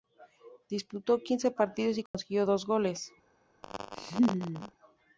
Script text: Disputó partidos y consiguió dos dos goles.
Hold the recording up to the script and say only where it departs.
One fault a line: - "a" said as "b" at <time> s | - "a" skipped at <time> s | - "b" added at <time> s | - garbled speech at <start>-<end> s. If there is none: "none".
- "quince" added at 1.2 s
- "dos" skipped at 2.7 s